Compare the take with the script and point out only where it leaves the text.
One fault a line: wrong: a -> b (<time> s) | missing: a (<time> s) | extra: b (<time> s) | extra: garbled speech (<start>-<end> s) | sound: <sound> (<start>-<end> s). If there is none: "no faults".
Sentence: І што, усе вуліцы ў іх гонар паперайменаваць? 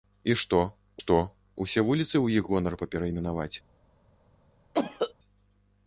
extra: што (1.0 s)
sound: cough (4.7-5.1 s)